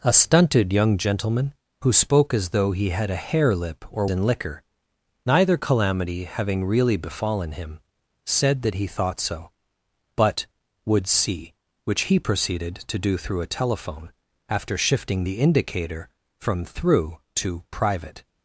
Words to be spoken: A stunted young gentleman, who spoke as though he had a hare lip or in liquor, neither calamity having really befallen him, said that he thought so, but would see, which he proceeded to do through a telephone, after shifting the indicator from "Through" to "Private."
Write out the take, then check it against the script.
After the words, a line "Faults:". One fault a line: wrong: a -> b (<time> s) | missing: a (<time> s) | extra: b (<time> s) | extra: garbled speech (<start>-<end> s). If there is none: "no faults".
A stunted young gentleman, who spoke as though he had a hare lip or in liquor, neither calamity having really befallen him, said that he thought so, but would see, which he proceeded to do through a telephone, after shifting the indicator from "Through" to "Private."
Faults:
no faults